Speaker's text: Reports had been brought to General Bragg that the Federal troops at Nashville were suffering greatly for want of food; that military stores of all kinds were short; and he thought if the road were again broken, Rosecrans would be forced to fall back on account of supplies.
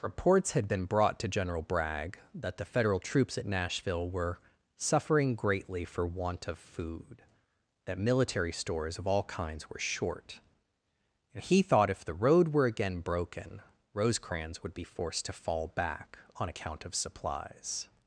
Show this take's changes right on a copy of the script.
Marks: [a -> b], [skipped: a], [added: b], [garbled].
Reports had been brought to General Bragg that the Federal troops at Nashville were suffering greatly for want of food; that military stores of all kinds were short; and he thought if the road were again broken, Rosecrans would be forced to fall back on account of supplies.